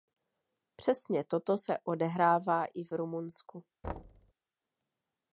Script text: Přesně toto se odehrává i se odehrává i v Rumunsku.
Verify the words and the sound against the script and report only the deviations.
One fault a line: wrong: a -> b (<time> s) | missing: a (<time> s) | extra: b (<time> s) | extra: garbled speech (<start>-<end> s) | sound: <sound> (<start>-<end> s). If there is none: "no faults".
missing: se odehrává i (2.8 s)
sound: thud (3.8-4.3 s)